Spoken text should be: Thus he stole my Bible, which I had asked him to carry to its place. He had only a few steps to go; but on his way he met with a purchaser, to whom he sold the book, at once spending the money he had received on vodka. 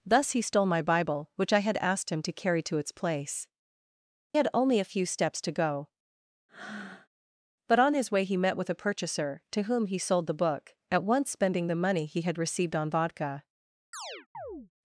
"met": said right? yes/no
yes